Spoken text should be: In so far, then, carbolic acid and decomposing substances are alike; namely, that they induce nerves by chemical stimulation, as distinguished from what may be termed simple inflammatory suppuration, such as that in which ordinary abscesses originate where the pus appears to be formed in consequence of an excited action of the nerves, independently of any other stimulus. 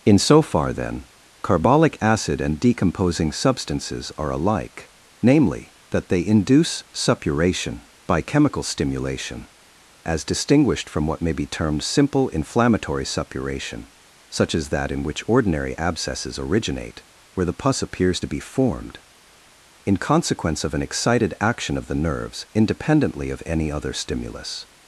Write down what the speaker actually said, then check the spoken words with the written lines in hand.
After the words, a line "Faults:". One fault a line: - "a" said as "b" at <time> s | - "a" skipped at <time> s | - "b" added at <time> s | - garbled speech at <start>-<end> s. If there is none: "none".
In so far, then, carbolic acid and decomposing substances are alike; namely, that they induce suppuration by chemical stimulation, as distinguished from what may be termed simple inflammatory suppuration, such as that in which ordinary abscesses originate where the pus appears to be formed in consequence of an excited action of the nerves, independently of any other stimulus.
Faults:
- "nerves" said as "suppuration" at 6.9 s